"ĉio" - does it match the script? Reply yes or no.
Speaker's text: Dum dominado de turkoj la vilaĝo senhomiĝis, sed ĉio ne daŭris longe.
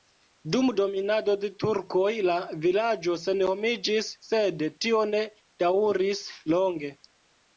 no